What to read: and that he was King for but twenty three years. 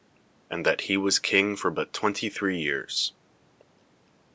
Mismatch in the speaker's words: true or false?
false